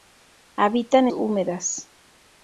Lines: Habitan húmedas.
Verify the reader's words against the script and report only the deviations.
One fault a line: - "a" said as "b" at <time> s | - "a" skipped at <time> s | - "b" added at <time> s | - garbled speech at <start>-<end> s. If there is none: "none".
none